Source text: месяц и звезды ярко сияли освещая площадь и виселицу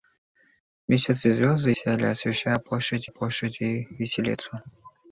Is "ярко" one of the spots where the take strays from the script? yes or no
yes